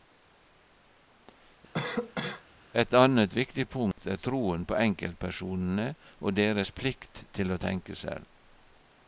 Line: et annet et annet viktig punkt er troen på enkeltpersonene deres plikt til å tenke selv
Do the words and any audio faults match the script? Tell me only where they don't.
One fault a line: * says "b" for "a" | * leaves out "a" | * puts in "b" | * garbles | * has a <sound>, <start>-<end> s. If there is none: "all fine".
* has a cough, 1.7-2.4 s
* leaves out "et annet"
* has a dropout, 3.9-4.0 s
* puts in "og"